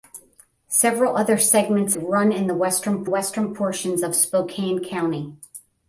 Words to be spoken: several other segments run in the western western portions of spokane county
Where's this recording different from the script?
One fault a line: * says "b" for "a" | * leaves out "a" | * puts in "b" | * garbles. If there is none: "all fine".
all fine